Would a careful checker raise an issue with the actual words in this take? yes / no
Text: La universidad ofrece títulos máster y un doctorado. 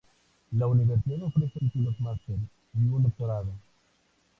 no